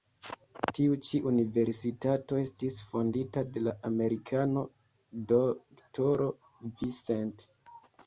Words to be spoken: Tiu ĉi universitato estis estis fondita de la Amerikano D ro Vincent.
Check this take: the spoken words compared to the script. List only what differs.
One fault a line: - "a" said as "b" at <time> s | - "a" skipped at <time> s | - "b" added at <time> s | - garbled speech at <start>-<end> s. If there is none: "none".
- "estis" skipped at 2.8 s